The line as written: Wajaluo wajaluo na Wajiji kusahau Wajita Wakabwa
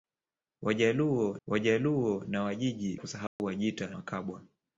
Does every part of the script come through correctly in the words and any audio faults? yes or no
no